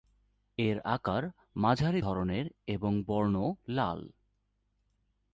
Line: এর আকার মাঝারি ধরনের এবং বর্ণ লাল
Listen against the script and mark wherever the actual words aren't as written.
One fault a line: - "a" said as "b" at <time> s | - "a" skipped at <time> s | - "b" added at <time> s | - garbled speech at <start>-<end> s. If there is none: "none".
none